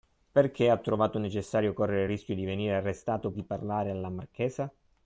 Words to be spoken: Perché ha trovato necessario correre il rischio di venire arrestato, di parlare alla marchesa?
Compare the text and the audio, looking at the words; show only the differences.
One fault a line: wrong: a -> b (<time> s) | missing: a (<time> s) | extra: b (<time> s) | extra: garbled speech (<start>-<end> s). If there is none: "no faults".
no faults